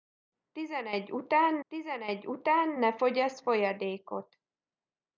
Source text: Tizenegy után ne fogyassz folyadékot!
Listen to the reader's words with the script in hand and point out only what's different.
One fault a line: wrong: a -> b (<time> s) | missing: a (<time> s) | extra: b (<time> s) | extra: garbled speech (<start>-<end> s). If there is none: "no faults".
extra: tizenegy után (1.7 s)